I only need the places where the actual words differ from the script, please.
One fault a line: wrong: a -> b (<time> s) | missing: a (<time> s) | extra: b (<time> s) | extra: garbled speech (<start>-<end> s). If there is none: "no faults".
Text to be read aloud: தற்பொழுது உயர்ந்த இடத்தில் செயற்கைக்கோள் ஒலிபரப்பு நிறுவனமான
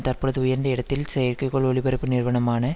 no faults